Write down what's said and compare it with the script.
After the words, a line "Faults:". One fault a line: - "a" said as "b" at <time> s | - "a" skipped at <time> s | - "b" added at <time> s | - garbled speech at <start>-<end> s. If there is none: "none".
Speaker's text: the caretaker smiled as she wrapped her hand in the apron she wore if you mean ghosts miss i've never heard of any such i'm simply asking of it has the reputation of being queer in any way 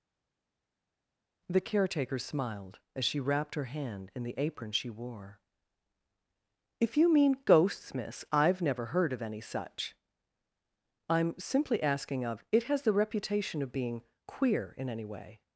the caretaker smiled as she wrapped her hand in the apron she wore if you mean ghosts miss i've never heard of any such i'm simply asking of it has the reputation of being queer in any way
Faults:
none